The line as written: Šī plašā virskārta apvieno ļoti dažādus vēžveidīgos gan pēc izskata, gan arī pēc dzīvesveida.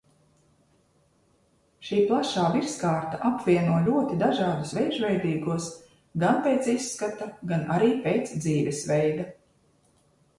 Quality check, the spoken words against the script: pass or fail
pass